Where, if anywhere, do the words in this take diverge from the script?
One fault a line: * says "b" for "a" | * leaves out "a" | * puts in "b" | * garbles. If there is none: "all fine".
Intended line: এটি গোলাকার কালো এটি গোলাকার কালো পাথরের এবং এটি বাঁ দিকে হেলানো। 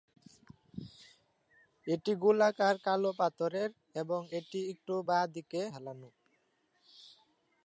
* leaves out "এটি গোলাকার কালো"
* puts in "একটু"